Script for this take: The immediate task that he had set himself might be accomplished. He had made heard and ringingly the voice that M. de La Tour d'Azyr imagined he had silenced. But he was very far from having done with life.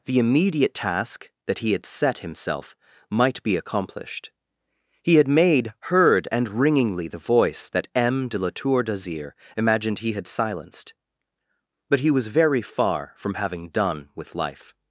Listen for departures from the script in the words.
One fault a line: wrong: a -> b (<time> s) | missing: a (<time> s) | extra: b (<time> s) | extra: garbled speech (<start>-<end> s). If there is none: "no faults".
no faults